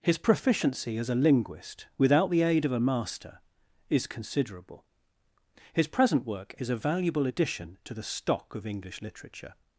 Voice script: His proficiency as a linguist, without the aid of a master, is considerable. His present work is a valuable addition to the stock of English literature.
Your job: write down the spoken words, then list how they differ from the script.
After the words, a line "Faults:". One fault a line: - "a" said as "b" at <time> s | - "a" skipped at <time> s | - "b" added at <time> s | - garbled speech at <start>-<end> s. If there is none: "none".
His proficiency as a linguist, without the aid of a master, is considerable. His present work is a valuable addition to the stock of English literature.
Faults:
none